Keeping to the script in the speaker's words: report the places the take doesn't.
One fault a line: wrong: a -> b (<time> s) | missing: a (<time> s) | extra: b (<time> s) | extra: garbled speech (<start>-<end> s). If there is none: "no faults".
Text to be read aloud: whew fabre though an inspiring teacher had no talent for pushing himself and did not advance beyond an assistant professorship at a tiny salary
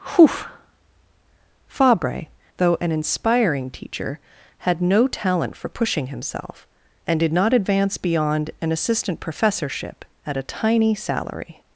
no faults